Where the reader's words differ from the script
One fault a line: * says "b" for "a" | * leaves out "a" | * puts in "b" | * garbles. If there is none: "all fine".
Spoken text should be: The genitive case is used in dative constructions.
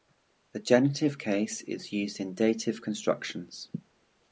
all fine